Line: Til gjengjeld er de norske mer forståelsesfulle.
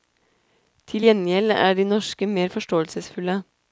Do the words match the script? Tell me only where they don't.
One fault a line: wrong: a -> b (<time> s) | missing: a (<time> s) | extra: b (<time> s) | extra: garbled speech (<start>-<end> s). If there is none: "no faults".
no faults